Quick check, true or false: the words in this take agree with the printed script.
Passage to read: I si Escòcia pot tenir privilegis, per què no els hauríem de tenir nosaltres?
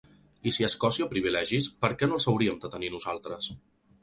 false